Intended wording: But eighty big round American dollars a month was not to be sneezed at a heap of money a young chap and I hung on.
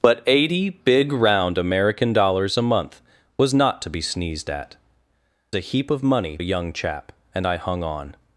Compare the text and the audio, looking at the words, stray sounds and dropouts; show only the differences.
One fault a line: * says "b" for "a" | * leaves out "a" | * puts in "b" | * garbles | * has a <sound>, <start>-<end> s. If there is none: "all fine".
all fine